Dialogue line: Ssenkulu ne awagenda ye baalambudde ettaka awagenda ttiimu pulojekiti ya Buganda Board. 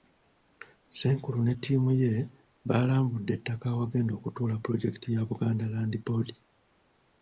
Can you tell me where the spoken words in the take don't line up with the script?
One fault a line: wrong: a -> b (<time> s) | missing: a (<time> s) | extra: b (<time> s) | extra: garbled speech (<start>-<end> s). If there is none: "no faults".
wrong: awagenda -> ttiimu (1.5 s)
wrong: ttiimu -> okutuula (4.1 s)
extra: Land (5.7 s)